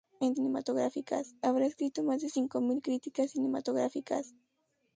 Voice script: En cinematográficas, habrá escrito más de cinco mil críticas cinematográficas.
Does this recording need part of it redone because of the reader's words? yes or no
no